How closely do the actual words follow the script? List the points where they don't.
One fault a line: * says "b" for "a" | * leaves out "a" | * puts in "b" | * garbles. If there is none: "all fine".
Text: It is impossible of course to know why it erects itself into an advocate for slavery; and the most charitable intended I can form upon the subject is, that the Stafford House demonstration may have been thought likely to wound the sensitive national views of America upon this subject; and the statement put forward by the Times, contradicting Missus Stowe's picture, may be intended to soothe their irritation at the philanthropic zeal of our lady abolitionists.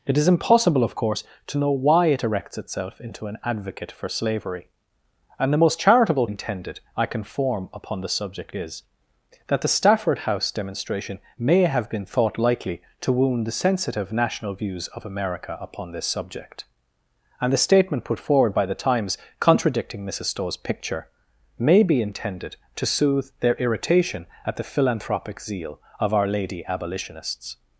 all fine